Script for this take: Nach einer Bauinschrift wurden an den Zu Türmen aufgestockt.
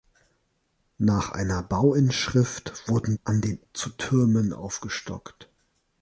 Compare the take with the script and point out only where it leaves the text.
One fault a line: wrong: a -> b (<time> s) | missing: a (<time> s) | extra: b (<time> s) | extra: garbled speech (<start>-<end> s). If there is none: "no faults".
no faults